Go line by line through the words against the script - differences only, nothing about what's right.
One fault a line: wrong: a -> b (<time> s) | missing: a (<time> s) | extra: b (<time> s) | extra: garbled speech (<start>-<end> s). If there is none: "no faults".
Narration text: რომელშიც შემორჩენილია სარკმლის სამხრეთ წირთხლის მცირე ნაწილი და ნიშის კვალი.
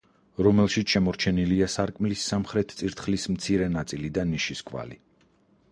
no faults